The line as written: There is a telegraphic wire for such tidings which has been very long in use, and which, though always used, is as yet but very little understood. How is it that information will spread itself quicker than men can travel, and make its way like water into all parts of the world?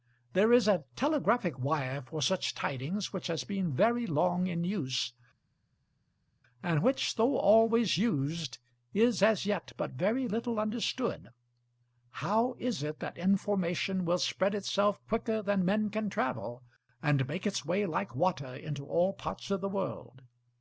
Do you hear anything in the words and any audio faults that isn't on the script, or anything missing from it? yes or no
no